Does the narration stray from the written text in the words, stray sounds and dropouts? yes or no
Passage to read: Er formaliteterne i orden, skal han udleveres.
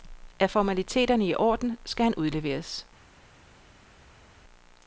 no